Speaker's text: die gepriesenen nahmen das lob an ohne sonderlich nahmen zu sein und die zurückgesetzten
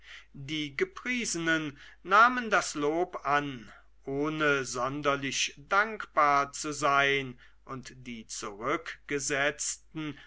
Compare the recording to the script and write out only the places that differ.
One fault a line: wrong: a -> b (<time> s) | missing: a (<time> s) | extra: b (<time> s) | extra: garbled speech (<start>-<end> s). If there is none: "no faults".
wrong: nahmen -> dankbar (5.6 s)